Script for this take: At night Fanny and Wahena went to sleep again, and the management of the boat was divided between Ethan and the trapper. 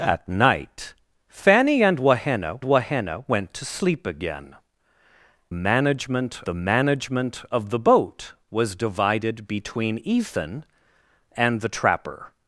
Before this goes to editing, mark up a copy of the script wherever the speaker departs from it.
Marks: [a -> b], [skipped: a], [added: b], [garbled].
At night Fanny and Wahena [added: Wahena] went to sleep again, [and -> management] the management of the boat was divided between Ethan and the trapper.